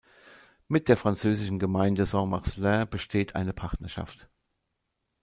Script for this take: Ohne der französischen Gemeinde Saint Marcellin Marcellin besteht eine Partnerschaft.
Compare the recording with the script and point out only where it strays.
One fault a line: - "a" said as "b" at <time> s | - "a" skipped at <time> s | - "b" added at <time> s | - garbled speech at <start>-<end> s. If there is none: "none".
- "Ohne" said as "Mit" at 0.7 s
- "Marcellin" skipped at 2.9 s